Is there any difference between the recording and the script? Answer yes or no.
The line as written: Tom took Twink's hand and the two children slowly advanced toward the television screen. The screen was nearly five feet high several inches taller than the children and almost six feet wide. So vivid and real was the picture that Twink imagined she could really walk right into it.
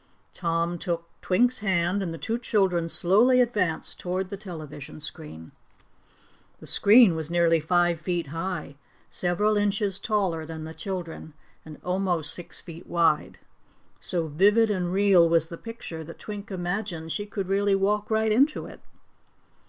no